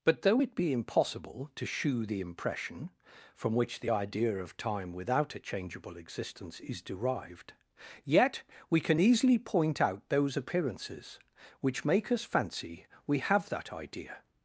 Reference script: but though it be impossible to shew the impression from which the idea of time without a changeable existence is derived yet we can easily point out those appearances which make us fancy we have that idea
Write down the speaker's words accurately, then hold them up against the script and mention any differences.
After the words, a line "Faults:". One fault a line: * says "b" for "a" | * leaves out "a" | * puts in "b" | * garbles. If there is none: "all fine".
but though it be impossible to shew the impression from which the idea of time without a changeable existence is derived yet we can easily point out those appearances which make us fancy we have that idea
Faults:
all fine